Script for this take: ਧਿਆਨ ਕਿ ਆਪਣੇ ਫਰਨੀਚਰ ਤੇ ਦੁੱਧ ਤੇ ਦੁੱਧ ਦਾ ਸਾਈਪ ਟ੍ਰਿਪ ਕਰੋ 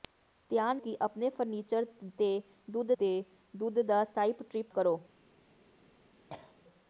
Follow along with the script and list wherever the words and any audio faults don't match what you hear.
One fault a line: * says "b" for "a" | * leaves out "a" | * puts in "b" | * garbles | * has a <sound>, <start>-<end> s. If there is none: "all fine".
* has a cough, 6.3-6.6 s